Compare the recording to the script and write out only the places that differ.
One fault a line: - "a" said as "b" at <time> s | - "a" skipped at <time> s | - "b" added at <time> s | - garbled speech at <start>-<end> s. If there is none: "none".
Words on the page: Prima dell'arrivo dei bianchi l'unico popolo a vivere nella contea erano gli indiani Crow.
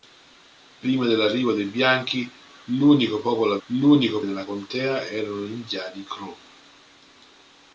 - "vivere" said as "l'unico" at 3.7 s